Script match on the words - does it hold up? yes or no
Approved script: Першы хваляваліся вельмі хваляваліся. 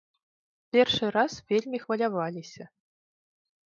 no